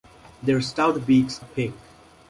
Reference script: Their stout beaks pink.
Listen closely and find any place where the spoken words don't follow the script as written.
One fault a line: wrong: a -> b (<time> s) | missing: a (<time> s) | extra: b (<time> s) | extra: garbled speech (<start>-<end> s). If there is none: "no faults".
no faults